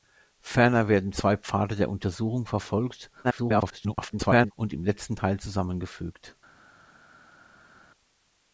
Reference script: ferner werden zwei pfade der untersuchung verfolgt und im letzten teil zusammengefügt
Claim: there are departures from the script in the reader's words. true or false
true